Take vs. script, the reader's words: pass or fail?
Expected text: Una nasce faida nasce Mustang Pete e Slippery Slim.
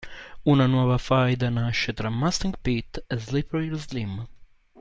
fail